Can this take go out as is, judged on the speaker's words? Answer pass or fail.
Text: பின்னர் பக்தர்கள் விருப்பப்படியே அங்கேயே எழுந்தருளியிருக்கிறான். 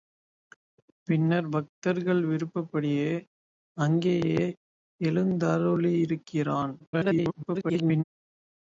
fail